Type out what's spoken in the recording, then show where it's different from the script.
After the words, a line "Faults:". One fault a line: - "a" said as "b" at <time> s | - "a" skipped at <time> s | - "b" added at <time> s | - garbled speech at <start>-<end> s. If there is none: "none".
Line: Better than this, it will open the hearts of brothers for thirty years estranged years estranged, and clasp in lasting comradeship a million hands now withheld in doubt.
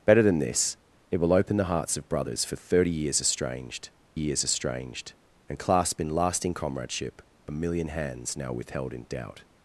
Better than this, it will open the hearts of brothers for thirty years estranged years estranged, and clasp in lasting comradeship a million hands now withheld in doubt.
Faults:
none